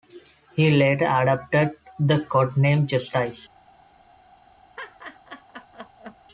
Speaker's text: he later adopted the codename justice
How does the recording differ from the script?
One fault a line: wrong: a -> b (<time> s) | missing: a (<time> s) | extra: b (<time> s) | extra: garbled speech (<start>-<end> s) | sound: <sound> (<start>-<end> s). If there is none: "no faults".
sound: laugh (4.8-6.2 s)